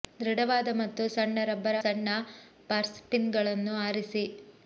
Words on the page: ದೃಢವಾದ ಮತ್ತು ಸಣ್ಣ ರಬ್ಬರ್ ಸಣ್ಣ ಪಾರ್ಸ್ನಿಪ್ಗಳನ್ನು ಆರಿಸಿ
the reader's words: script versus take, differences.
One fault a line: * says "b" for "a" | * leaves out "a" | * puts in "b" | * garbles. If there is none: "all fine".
all fine